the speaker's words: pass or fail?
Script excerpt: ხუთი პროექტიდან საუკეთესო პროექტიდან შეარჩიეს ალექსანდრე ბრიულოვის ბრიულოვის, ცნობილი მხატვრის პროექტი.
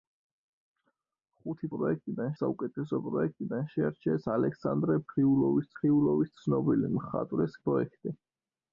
pass